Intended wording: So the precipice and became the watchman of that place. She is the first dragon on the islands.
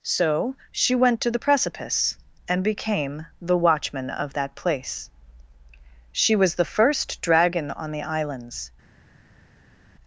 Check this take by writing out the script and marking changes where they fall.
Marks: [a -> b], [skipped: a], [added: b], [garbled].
So [added: she went to] the precipice and became the watchman of that place. She [is -> was] the first dragon on the islands.